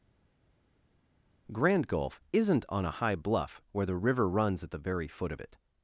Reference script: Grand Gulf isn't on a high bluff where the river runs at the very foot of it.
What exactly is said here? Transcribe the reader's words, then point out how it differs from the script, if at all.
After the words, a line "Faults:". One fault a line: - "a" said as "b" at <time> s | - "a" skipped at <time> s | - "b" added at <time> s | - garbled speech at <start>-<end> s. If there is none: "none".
Grand Gulf isn't on a high bluff where the river runs at the very foot of it.
Faults:
none